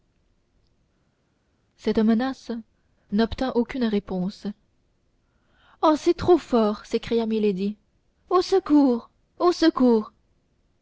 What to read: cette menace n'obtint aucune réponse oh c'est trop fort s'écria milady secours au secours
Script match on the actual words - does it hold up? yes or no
no